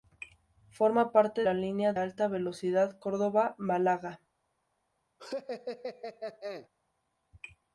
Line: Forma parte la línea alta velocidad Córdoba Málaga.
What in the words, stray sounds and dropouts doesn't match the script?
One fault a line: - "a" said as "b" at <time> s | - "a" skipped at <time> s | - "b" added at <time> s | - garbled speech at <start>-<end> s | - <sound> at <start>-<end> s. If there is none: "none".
- laugh at 5.2-6.7 s